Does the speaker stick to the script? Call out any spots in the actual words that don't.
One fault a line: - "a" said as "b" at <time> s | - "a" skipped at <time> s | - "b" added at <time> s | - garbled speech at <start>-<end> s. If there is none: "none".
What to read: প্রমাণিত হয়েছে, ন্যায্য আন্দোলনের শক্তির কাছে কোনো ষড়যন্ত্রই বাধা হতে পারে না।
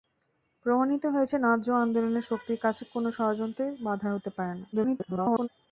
- garbled speech at 4.7-5.5 s